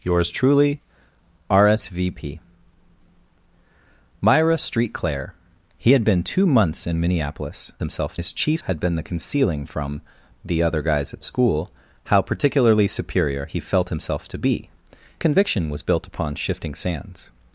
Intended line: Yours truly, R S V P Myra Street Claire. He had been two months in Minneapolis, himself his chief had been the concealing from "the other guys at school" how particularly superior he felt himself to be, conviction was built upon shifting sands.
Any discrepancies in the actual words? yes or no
no